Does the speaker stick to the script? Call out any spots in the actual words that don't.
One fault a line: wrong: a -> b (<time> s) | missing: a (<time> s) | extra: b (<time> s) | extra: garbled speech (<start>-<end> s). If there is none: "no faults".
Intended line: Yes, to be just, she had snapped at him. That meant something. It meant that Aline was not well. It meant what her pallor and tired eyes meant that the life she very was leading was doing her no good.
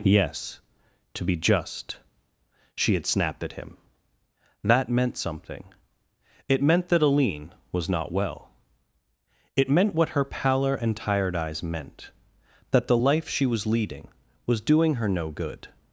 missing: very (13.4 s)